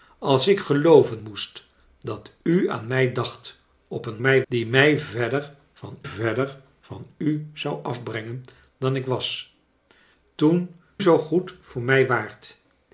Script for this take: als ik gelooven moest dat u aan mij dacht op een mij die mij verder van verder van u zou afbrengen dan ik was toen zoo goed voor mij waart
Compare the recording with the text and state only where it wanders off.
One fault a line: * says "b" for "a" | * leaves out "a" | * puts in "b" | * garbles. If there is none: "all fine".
all fine